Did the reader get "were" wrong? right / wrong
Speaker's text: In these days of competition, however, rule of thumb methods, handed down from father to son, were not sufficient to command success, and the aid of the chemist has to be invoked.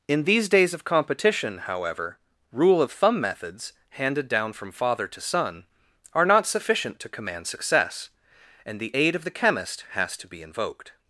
wrong